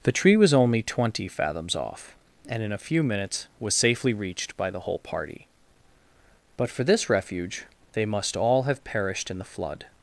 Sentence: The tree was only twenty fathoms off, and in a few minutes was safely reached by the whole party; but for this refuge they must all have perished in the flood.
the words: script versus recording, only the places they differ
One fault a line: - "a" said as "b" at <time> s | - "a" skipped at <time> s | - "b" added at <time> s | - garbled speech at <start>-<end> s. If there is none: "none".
none